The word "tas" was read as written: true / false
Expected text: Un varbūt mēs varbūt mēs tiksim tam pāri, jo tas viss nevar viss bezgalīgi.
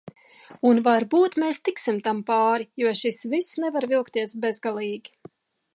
false